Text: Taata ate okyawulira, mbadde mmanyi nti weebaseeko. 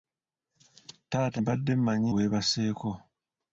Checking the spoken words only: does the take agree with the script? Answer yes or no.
no